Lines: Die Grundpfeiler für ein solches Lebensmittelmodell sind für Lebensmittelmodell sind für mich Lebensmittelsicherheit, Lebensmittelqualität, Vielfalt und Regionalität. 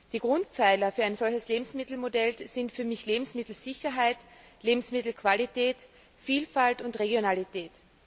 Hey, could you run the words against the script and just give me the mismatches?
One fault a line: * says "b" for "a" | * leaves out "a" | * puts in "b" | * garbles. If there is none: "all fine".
* leaves out "Lebensmittelmodell sind für"